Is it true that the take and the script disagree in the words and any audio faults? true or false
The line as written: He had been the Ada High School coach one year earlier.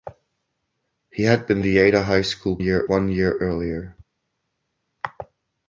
true